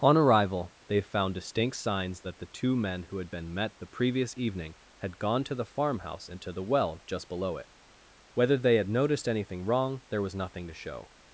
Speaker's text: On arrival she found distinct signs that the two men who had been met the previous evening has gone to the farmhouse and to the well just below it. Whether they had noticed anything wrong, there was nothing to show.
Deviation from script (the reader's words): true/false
true